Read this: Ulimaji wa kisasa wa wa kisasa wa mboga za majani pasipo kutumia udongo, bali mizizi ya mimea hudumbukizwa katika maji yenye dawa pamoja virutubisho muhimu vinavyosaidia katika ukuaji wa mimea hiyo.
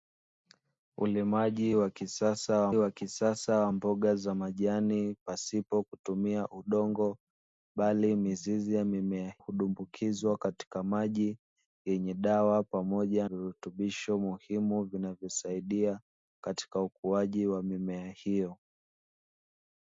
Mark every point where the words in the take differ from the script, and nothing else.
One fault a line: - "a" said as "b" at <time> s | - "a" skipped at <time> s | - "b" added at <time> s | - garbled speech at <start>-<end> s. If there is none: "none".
none